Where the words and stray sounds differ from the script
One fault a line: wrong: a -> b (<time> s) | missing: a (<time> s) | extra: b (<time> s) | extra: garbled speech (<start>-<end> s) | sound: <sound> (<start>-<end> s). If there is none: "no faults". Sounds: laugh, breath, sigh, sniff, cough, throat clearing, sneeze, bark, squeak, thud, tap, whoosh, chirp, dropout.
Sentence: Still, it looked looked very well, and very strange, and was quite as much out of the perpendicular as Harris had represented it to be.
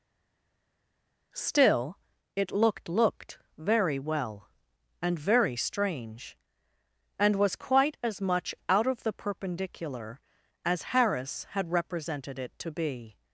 no faults